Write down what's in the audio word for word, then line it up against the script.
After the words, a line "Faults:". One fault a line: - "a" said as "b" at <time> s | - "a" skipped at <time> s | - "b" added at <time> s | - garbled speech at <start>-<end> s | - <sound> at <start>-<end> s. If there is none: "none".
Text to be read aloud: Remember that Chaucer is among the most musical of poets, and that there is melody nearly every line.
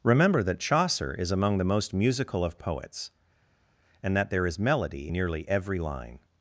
Remember that Chaucer is among the most musical of poets, and that there is melody nearly every line.
Faults:
none